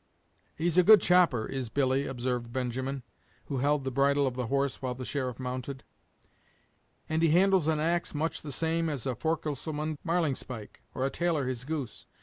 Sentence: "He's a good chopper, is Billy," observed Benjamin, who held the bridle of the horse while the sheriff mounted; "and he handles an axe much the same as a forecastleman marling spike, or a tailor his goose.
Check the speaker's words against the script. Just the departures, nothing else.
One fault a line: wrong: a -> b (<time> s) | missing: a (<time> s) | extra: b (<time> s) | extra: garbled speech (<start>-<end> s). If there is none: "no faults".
no faults